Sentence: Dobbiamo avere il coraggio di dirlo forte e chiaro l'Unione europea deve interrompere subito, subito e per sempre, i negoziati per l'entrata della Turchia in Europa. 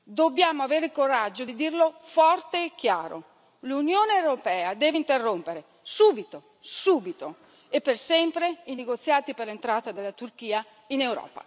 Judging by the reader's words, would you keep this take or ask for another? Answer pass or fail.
pass